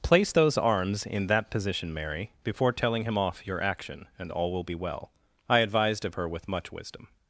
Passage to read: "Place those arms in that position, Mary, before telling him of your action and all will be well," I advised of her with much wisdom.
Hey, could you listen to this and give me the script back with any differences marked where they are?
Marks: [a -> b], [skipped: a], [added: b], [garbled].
"Place those arms in that position, Mary, before telling him [of -> off] your action and all will be well," I advised of her with much wisdom.